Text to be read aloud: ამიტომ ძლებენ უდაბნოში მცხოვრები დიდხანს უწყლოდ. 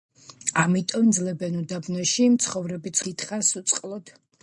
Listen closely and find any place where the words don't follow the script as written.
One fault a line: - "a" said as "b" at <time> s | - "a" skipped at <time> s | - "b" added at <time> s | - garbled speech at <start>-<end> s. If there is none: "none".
none